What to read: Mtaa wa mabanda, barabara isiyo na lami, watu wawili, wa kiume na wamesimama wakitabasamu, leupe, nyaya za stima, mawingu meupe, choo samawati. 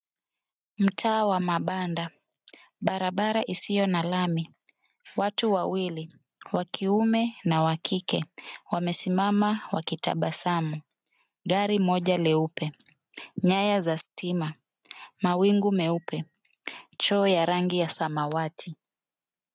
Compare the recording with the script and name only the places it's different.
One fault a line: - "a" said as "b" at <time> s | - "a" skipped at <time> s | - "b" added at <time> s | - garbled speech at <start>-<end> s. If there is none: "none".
- "wa kike" added at 7.6 s
- "gari moja" added at 11.4 s
- "ya rangi ya" added at 17.3 s